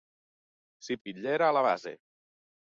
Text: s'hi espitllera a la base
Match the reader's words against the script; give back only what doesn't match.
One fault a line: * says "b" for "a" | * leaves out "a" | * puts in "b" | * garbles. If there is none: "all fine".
all fine